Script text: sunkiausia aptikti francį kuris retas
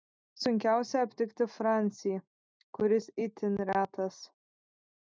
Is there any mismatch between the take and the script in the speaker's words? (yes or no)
yes